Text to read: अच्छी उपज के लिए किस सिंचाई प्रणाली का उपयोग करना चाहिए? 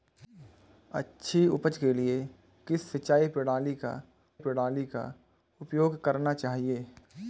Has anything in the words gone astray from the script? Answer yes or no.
yes